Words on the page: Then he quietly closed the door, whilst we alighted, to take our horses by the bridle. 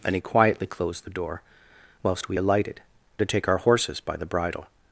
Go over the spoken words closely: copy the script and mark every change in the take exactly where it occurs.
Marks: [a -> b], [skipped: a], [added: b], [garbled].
Then he quietly closed the door, whilst we alighted, to take our horses by the bridle.